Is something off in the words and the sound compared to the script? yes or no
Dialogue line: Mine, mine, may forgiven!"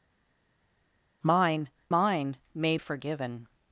no